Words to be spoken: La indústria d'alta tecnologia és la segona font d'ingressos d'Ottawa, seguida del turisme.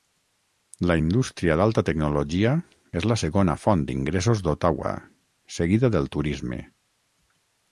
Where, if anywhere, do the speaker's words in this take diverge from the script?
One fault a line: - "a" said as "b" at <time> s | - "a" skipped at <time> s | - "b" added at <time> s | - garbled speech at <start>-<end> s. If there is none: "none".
none